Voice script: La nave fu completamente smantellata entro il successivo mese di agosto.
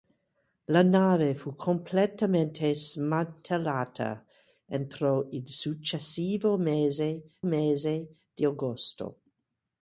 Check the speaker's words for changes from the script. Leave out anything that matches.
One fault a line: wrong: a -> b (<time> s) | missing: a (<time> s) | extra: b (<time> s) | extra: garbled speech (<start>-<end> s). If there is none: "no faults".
extra: mese (7.4 s)